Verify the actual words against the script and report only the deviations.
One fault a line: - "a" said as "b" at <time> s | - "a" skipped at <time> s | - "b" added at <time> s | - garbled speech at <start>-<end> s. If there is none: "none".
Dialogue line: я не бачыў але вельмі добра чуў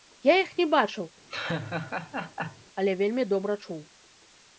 - "іх" added at 0.4 s